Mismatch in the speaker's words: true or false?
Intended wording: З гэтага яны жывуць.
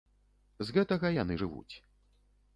false